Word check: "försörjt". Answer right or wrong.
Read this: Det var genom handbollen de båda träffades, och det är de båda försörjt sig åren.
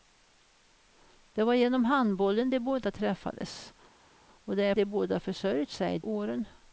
right